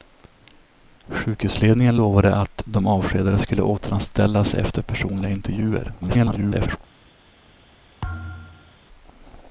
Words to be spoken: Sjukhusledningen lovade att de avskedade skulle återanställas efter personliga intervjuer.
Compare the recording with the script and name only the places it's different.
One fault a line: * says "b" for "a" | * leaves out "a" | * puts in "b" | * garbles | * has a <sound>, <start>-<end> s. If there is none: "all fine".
* garbles
* has a thud, 8.0-8.8 s